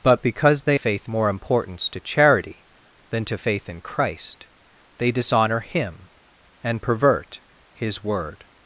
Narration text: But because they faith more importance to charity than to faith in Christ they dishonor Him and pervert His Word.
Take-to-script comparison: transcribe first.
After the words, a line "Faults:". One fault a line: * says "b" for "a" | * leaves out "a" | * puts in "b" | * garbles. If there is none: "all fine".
But because they faith more importance to charity than to faith in Christ they dishonor Him and pervert His Word.
Faults:
all fine